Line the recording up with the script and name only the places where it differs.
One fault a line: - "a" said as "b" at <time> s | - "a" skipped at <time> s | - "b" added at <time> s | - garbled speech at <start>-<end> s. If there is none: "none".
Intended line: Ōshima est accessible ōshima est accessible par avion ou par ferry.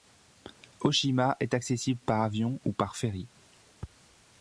- "ōshima est accessible" skipped at 2.0 s